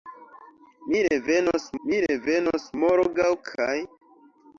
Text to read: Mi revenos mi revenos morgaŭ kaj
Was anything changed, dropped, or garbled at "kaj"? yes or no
no